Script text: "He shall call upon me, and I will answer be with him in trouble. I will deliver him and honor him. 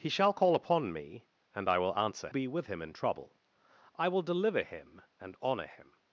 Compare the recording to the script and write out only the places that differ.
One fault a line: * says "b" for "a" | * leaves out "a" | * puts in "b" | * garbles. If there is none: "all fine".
all fine